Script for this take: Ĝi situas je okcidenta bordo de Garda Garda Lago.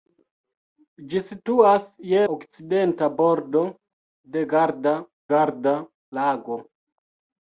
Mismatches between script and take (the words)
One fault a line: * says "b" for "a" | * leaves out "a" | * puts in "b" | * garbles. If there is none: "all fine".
all fine